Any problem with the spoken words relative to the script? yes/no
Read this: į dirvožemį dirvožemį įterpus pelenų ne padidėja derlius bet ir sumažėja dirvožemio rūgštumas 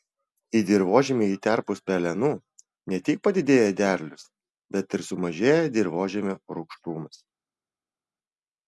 yes